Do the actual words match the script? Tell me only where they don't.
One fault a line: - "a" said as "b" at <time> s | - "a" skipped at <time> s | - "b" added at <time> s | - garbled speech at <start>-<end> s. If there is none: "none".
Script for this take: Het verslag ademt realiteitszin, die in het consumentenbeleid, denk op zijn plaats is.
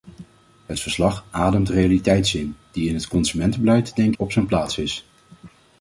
none